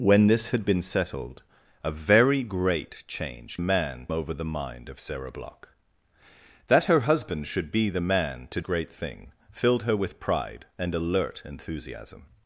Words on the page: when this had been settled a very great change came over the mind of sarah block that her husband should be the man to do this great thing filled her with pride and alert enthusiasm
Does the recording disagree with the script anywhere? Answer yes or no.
yes